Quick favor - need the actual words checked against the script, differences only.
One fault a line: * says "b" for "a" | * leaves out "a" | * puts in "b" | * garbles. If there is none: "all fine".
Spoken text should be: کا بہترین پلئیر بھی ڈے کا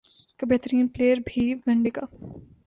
* puts in "ون"